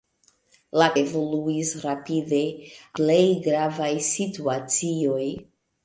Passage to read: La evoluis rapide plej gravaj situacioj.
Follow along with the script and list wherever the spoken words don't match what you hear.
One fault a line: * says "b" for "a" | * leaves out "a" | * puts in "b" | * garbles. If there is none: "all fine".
all fine